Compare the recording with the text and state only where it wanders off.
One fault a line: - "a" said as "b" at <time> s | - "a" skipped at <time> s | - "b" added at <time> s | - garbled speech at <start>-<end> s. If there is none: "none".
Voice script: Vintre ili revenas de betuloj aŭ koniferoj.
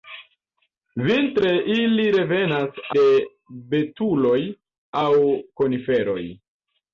none